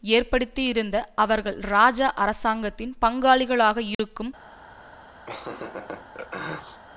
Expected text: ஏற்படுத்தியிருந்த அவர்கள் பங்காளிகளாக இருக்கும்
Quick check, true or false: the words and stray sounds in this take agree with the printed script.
false